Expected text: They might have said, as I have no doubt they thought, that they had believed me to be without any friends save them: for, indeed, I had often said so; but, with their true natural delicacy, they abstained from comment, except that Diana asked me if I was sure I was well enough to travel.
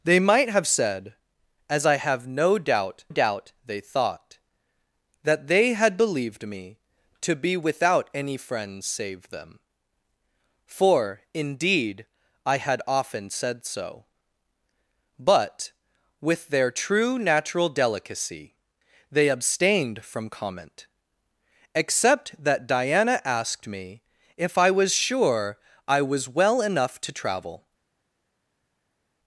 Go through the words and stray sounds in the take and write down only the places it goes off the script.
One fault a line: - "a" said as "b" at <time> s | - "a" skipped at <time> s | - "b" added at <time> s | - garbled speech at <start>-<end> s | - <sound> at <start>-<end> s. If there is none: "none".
- "doubt" added at 3.1 s